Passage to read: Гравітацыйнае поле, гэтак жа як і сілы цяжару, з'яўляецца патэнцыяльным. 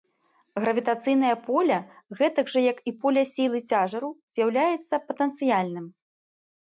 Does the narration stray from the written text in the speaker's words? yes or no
yes